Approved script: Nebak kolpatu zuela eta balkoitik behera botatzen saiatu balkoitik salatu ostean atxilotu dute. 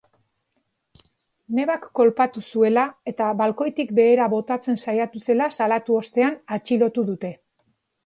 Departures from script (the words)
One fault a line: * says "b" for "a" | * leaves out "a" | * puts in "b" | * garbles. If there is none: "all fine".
* says "zela" for "balkoitik"